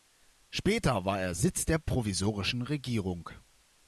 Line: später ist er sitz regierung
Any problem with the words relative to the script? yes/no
yes